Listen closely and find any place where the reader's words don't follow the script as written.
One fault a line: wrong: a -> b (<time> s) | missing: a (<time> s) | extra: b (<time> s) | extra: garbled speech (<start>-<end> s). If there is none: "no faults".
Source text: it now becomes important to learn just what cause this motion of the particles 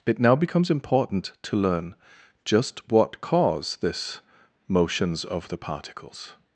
wrong: motion -> motions (4.7 s)